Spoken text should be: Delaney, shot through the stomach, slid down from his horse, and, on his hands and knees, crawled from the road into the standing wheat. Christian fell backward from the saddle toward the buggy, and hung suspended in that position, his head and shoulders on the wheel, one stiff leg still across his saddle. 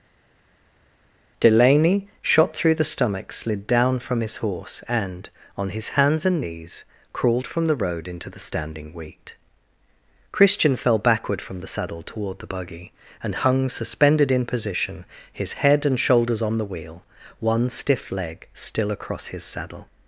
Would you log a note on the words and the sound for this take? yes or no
yes